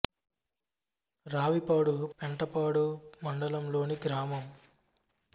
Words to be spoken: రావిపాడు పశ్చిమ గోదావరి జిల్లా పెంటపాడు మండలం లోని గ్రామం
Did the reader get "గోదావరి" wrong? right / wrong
wrong